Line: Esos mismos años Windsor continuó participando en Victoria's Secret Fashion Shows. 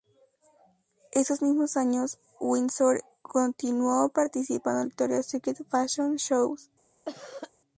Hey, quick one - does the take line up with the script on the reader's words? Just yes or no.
yes